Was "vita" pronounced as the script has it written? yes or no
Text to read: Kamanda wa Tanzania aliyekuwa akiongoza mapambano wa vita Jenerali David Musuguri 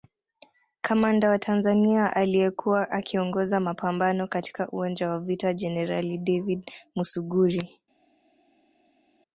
yes